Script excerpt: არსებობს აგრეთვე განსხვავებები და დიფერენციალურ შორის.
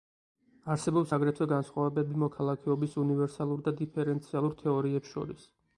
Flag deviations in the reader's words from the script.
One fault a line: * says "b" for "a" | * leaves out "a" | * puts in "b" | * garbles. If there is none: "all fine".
* puts in "მოქალაქეობის უნივერსალურ"
* puts in "თეორიებს"